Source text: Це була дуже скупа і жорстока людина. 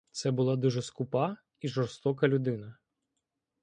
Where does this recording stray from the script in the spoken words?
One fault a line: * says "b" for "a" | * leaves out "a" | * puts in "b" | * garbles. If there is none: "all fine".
all fine